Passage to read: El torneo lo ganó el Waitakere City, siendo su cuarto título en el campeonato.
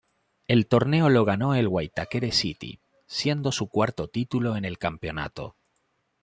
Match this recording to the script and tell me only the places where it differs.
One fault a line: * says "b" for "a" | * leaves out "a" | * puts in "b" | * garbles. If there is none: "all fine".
all fine